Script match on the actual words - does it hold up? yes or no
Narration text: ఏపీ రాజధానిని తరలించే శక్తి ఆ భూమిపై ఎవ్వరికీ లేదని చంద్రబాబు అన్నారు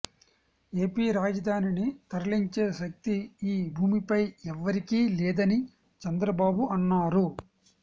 no